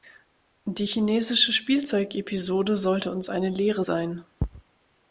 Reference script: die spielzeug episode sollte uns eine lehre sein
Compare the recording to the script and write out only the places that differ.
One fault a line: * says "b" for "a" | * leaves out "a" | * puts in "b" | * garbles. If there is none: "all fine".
* puts in "chinesische"